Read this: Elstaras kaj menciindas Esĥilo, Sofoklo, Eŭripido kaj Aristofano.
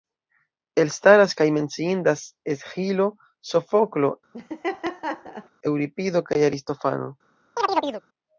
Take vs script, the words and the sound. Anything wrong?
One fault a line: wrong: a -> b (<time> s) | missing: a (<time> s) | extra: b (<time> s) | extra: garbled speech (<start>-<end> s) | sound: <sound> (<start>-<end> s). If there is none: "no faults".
sound: laugh (4.3-5.5 s)
sound: chirp (7.6-8.0 s)